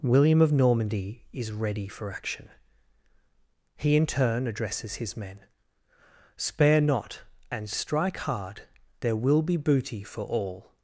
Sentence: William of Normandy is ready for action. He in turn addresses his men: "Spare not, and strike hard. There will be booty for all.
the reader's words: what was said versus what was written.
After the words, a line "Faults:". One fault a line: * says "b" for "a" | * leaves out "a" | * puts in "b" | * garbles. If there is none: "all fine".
William of Normandy is ready for action. He in turn addresses his men: "Spare not, and strike hard. There will be booty for all.
Faults:
all fine